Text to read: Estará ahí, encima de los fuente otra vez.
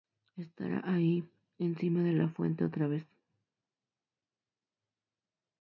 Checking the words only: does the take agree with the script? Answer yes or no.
no